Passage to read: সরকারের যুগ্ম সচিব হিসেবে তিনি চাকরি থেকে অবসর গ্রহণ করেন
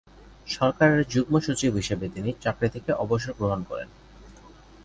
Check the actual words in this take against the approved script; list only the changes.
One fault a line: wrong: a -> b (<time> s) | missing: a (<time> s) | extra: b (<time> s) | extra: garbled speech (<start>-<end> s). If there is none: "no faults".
no faults